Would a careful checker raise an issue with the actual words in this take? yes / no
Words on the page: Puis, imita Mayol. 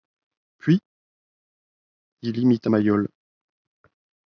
yes